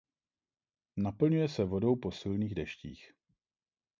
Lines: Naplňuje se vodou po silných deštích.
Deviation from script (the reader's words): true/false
false